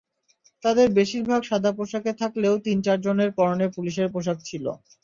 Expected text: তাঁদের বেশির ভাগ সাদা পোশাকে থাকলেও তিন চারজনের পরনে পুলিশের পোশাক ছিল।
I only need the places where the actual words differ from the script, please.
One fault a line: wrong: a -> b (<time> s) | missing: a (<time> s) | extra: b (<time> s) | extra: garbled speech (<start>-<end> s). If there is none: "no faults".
no faults